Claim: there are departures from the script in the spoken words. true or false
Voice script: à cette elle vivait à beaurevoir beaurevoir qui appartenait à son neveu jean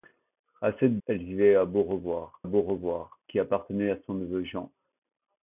false